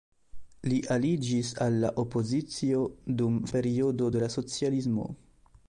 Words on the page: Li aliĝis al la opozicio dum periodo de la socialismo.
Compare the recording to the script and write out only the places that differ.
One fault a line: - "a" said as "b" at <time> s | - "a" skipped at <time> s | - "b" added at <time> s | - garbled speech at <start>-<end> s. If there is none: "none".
none